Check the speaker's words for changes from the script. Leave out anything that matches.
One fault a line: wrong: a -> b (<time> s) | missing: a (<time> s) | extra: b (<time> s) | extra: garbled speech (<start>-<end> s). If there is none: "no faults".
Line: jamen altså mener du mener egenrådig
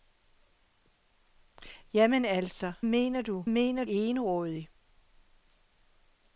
no faults